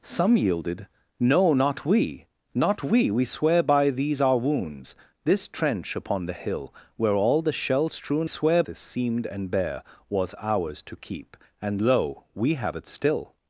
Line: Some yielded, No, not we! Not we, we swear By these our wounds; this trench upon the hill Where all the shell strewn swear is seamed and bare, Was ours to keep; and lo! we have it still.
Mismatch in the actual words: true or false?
false